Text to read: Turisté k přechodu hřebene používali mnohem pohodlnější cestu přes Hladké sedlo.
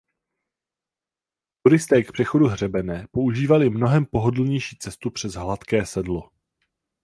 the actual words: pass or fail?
pass